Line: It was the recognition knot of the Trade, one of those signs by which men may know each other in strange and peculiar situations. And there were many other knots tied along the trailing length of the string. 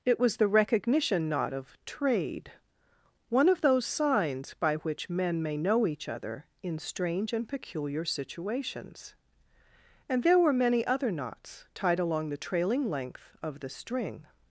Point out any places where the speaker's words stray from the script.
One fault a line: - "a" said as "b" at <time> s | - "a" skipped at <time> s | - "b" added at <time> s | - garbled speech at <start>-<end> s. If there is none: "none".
- "the" skipped at 1.8 s